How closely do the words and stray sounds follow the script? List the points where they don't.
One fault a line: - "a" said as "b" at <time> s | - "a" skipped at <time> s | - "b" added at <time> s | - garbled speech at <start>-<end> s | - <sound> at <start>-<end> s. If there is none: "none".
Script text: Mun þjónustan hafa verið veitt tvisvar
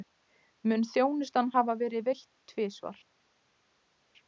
none